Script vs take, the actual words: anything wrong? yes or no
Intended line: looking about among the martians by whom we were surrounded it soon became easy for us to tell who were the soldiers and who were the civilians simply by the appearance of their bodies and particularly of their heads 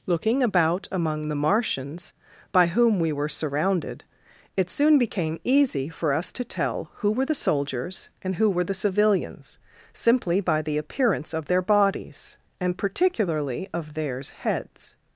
yes